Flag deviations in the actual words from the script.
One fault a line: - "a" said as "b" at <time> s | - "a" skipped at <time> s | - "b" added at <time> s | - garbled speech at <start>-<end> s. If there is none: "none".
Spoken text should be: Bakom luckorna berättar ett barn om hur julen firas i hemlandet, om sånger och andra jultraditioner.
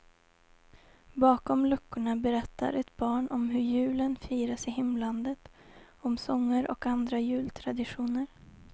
none